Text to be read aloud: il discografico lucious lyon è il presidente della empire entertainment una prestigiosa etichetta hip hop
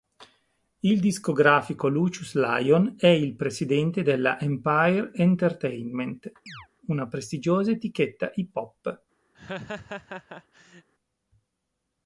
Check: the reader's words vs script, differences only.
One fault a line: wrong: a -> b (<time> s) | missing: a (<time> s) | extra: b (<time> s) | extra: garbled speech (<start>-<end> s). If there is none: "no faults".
no faults